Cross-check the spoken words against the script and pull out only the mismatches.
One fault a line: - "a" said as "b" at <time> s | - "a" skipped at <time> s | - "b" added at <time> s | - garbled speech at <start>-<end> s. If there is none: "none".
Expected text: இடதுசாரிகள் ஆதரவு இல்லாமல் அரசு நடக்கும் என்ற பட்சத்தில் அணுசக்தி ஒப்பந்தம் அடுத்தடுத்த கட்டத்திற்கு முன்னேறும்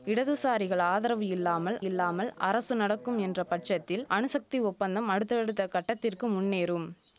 - "இல்லாமல்" added at 1.8 s